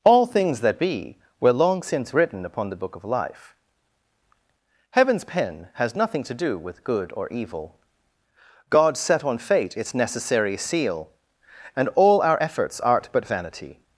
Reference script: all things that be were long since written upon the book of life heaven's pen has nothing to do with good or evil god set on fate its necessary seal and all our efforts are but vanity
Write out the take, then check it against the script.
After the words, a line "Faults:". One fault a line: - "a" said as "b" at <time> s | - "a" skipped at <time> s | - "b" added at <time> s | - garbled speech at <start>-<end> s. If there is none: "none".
all things that be were long since written upon the book of life heaven's pen has nothing to do with good or evil god set on fate its necessary seal and all our efforts art but vanity
Faults:
- "are" said as "art" at 12.8 s